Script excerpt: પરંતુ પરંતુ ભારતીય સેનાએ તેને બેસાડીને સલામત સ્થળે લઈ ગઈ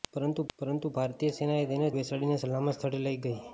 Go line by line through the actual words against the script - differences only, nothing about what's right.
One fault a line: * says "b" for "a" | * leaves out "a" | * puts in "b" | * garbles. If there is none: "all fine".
all fine